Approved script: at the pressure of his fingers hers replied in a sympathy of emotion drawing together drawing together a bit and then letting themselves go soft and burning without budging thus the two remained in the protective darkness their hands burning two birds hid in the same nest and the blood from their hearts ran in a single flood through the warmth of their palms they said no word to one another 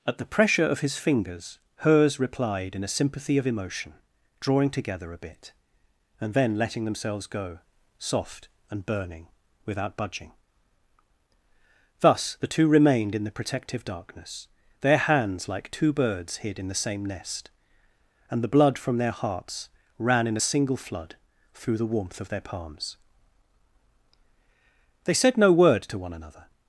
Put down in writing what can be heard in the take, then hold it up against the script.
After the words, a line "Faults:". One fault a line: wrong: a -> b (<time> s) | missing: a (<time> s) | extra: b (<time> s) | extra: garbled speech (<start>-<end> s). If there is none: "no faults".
at the pressure of his fingers hers replied in a sympathy of emotion drawing together a bit and then letting themselves go soft and burning without budging thus the two remained in the protective darkness their hands like two birds hid in the same nest and the blood from their hearts ran in a single flood through the warmth of their palms they said no word to one another
Faults:
missing: drawing together (5.1 s)
wrong: burning -> like (15.5 s)